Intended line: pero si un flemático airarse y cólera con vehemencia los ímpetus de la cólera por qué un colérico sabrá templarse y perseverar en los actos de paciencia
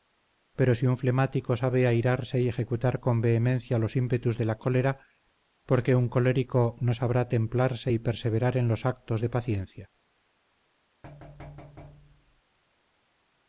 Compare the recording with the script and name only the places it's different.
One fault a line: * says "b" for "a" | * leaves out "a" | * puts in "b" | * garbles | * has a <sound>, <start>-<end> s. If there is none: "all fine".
* puts in "sabe"
* says "ejecutar" for "cólera"
* puts in "no"
* has a thud, 11.0-12.4 s